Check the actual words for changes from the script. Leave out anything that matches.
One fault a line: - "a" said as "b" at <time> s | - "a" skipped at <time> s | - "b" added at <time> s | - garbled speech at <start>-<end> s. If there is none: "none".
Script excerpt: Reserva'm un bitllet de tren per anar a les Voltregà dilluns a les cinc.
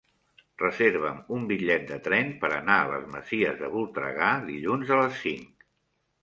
- "Masies de" added at 3.2 s